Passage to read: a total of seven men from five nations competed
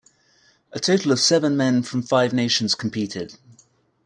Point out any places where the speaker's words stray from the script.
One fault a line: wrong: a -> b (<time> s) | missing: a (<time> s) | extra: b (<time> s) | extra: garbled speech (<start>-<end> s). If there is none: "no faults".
no faults